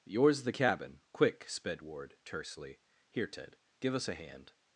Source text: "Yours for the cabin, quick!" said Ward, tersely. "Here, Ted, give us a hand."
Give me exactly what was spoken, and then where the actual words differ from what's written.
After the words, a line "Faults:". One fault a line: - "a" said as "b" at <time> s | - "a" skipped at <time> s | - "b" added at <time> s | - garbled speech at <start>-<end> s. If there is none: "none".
"Yours the cabin, quick!" sped Ward, tersely. "Here, Ted, give us a hand."
Faults:
- "for" skipped at 0.4 s
- "said" said as "sped" at 1.5 s